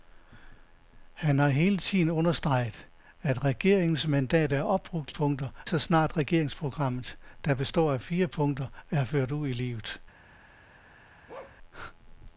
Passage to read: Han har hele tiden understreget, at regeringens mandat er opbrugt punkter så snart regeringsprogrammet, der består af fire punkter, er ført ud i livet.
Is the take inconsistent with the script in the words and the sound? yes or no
yes